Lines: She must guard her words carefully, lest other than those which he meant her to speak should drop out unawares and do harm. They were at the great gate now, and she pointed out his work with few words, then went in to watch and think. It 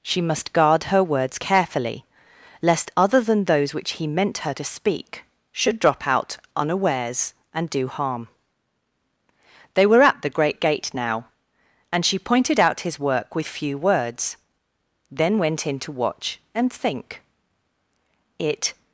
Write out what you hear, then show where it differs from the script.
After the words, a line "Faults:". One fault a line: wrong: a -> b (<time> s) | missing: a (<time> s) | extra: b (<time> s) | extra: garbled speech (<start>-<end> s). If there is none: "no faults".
She must guard her words carefully, lest other than those which he meant her to speak should drop out unawares and do harm. They were at the great gate now, and she pointed out his work with few words, then went in to watch and think. It
Faults:
no faults